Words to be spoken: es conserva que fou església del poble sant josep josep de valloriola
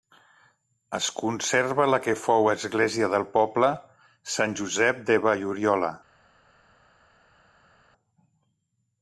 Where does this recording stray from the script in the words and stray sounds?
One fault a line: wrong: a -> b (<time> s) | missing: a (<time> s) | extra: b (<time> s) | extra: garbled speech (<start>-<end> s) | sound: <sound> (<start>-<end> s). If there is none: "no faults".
extra: la (1.9 s)
missing: josep (5.1 s)